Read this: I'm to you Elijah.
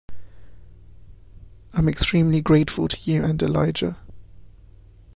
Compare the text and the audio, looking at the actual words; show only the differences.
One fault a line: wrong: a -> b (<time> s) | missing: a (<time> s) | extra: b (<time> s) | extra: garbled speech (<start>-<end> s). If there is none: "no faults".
extra: extremely grateful (1.9 s)
extra: and (3.2 s)